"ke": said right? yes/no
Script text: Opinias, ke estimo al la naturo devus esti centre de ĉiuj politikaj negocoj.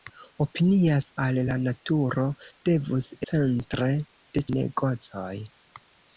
no